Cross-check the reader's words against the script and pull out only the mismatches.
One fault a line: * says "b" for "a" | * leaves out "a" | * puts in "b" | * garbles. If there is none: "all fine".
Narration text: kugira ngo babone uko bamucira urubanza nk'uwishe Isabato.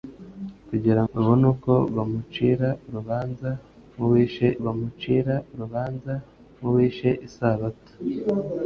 * leaves out "ngo"
* puts in "bamucira urubanza nk'uwishe"